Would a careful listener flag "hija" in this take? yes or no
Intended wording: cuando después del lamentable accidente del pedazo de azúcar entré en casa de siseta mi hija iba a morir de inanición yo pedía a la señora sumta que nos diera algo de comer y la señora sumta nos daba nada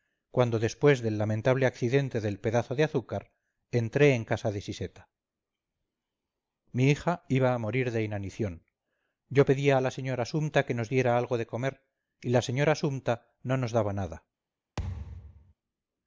no